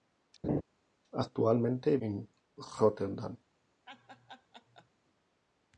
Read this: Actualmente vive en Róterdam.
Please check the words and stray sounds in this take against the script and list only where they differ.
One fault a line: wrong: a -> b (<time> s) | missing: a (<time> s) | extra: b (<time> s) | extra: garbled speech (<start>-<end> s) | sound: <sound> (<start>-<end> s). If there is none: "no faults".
sound: laugh (0.4-0.6 s)
missing: vive (2.0 s)
sound: laugh (3.9-4.9 s)